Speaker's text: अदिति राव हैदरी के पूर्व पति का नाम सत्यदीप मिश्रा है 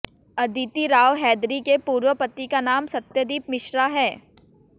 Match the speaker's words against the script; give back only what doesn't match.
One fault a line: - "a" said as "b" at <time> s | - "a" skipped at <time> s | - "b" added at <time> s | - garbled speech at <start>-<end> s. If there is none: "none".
none